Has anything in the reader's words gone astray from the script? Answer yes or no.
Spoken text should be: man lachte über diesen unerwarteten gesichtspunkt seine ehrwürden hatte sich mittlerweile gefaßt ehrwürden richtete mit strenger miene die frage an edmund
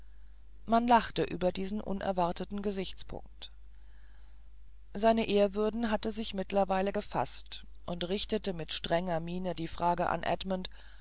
yes